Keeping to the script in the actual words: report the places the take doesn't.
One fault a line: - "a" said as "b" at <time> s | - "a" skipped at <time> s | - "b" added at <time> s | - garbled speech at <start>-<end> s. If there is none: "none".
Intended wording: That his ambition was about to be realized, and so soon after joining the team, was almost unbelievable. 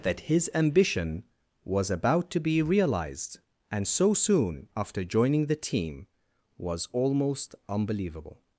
none